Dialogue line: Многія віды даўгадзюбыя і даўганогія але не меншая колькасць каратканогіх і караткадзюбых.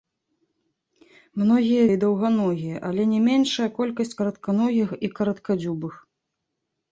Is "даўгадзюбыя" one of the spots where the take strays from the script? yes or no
yes